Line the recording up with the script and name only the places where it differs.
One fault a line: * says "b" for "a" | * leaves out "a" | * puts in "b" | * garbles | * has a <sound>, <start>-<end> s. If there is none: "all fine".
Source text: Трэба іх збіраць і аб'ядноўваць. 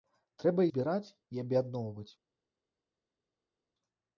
* leaves out "іх"